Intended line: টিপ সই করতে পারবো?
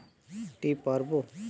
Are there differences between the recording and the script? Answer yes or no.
yes